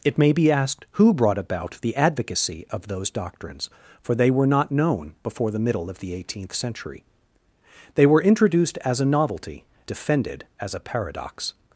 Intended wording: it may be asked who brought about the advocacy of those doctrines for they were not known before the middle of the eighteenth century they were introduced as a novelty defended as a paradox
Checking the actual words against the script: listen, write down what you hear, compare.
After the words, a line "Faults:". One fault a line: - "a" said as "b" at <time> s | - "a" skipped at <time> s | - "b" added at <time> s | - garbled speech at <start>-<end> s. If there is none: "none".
it may be asked who brought about the advocacy of those doctrines for they were not known before the middle of the eighteenth century they were introduced as a novelty defended as a paradox
Faults:
none